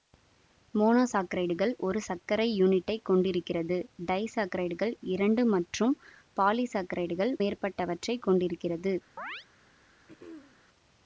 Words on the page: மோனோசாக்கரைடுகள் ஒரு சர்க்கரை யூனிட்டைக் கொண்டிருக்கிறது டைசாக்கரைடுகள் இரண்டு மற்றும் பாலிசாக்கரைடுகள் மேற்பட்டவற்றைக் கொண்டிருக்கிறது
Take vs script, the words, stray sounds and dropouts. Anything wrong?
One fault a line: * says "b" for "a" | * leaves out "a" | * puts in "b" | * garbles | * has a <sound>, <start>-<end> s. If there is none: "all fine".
* has a chirp, 9.2-9.5 s
* has a throat clearing, 10.1-10.6 s